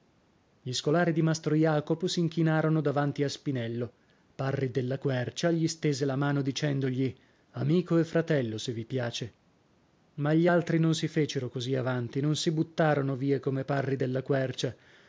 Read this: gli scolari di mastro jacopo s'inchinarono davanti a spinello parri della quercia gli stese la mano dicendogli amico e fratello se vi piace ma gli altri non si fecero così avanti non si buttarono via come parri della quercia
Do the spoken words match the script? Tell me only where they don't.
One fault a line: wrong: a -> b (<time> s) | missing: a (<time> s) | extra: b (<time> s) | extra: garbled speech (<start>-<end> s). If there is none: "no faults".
no faults